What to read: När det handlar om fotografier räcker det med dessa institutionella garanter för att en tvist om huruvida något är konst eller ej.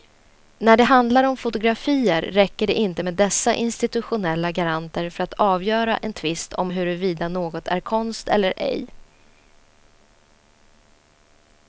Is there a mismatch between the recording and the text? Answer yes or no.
yes